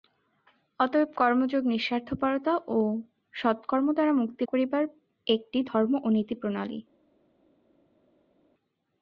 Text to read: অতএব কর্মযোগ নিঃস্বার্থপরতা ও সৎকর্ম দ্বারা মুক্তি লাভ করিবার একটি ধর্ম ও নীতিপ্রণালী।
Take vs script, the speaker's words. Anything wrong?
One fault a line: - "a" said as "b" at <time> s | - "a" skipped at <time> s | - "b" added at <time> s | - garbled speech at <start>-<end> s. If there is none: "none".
- "লাভ" skipped at 4.4 s